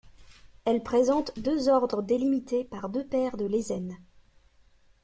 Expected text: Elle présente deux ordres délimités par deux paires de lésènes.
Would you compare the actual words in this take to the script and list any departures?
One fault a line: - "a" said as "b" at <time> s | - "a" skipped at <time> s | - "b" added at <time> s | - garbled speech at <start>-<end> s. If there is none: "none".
none